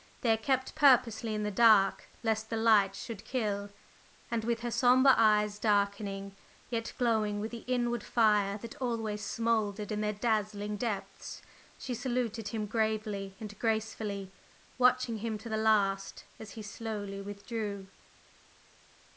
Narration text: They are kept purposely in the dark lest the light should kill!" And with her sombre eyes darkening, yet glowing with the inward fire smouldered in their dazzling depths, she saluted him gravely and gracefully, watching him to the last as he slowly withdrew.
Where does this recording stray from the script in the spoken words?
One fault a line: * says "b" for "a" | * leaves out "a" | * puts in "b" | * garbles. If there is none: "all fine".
* puts in "that always"